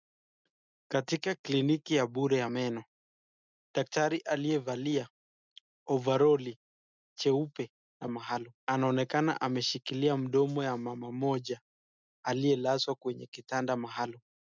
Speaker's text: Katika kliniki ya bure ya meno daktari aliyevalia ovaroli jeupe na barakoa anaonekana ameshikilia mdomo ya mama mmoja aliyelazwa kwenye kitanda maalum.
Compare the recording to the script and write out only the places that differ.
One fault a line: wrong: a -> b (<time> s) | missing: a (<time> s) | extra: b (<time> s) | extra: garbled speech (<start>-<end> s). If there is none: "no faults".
wrong: barakoa -> maalum (8.1 s)